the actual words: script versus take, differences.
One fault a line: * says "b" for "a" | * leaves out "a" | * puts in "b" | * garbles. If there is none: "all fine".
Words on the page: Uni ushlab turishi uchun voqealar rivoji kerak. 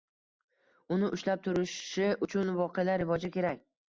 all fine